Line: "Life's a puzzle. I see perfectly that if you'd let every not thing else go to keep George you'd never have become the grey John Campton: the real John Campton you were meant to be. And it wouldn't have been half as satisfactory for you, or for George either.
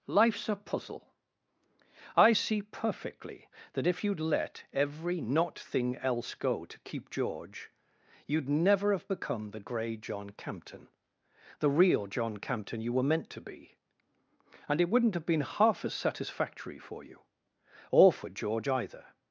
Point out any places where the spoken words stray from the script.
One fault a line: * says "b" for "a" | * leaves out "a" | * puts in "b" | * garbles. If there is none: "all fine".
all fine